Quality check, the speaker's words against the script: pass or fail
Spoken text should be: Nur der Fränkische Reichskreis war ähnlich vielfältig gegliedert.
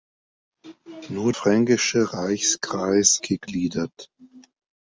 fail